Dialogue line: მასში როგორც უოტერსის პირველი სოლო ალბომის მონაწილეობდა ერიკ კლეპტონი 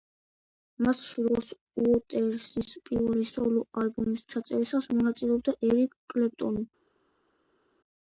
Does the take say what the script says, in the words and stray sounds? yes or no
no